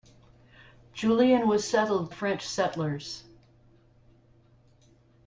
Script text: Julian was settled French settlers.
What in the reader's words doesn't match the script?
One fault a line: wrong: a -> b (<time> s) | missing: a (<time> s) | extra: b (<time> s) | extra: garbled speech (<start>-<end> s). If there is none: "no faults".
no faults